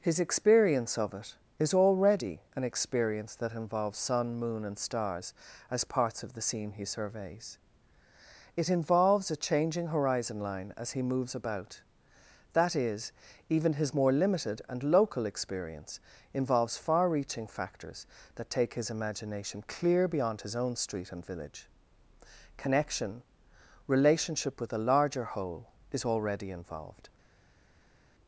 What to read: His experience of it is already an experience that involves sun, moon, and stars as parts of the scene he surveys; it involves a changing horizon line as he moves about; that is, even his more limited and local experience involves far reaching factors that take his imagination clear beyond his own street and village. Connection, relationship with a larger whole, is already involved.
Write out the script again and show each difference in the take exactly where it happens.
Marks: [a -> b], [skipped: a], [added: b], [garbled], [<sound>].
His experience of it is already an experience that involves sun, moon, and stars as parts of the scene he surveys; it involves a changing horizon line as he moves about; that is, even his more limited and local experience involves far reaching factors that take his imagination clear beyond his own street and village. Connection, relationship with a larger whole, is already involved.